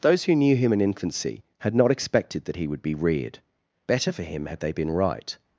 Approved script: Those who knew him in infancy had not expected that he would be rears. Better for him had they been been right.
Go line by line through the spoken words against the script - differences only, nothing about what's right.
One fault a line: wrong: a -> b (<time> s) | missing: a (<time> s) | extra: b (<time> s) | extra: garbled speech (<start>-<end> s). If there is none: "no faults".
wrong: rears -> reared (2.9 s)
missing: been (4.9 s)